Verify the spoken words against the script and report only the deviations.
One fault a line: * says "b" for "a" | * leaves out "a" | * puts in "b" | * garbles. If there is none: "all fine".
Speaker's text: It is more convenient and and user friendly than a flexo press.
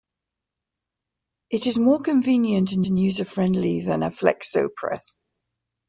all fine